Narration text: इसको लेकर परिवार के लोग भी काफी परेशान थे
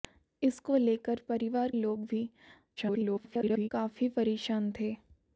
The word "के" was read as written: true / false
false